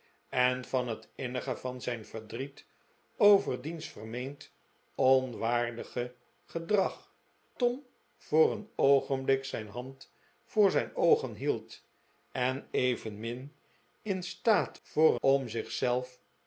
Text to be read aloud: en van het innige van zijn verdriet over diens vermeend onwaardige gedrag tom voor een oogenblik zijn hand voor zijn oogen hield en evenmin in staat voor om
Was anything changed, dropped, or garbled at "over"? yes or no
no